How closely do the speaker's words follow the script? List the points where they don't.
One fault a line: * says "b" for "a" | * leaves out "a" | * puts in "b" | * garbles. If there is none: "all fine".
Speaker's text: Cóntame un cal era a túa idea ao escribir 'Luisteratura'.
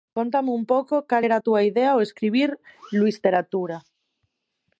* puts in "pouco"